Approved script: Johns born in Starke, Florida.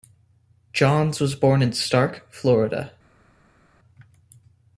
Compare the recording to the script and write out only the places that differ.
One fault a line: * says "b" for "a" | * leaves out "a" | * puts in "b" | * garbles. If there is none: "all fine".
* puts in "was"